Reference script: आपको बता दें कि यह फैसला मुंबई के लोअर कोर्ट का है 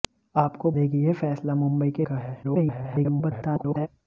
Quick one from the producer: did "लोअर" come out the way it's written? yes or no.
no